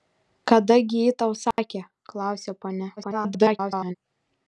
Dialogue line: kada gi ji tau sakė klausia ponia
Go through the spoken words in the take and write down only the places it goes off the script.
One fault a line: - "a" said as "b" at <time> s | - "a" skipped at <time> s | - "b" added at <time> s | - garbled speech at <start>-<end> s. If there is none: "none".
- garbled speech at 3.0-4.0 s